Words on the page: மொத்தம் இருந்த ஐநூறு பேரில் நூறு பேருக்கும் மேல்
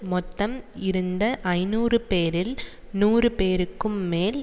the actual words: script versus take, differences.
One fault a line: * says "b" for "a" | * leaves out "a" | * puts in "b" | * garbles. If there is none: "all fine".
all fine